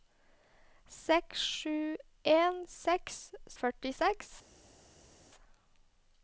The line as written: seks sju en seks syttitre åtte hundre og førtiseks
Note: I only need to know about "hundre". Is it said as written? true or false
false